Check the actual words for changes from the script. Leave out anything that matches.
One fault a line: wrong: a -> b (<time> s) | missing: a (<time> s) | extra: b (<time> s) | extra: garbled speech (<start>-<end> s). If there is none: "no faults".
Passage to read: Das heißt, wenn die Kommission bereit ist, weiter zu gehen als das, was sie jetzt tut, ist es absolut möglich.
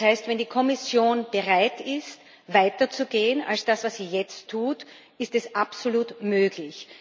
no faults